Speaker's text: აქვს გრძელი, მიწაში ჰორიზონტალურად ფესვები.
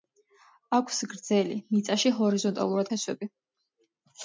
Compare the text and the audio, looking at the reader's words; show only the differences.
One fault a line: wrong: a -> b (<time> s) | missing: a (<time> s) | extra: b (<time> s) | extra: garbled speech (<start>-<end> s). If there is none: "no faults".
no faults